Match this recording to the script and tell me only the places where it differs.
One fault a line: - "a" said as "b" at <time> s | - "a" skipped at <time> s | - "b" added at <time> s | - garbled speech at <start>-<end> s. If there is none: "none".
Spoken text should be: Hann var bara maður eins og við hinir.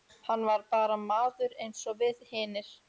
none